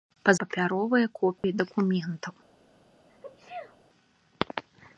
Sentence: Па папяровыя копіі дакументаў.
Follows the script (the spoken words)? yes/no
yes